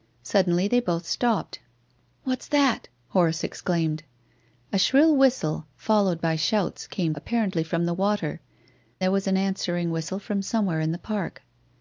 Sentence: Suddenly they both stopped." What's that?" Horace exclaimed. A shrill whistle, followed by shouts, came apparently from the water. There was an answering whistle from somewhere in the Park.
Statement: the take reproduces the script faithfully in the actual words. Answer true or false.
true